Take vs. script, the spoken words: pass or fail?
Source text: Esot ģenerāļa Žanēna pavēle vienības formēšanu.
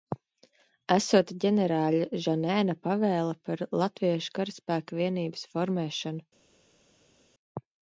fail